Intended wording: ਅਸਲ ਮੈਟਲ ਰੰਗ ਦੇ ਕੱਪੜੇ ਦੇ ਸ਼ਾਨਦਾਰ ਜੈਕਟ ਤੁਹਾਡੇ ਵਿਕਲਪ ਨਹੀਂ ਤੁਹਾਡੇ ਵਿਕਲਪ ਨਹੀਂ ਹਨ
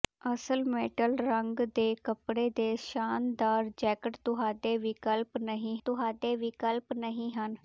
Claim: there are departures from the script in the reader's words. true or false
false